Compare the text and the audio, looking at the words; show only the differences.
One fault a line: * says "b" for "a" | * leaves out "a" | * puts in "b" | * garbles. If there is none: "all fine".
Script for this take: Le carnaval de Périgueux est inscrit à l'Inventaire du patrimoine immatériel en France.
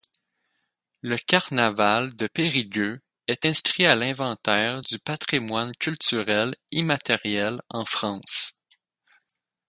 * puts in "culturel"